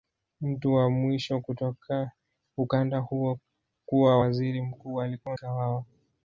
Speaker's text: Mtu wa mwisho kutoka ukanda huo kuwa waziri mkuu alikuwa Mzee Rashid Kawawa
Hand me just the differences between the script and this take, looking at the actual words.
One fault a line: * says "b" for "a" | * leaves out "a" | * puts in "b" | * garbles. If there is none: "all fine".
* leaves out "Mzee Rashid"